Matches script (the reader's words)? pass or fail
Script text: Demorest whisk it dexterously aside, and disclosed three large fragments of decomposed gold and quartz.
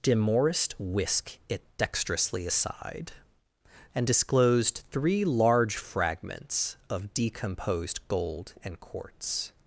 pass